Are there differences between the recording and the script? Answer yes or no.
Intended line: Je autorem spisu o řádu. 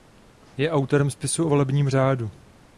yes